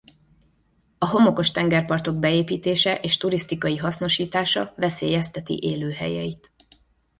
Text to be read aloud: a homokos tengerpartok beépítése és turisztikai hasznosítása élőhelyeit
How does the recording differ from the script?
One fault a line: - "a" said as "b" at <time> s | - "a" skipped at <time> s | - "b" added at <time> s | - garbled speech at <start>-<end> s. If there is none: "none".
- "veszélyezteti" added at 4.8 s